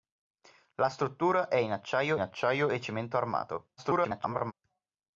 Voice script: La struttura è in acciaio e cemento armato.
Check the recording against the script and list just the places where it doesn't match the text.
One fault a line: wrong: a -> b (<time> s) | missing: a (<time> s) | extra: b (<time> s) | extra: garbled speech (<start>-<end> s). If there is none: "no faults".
extra: acciaio (2.2 s)
extra: garbled speech (3.8-4.5 s)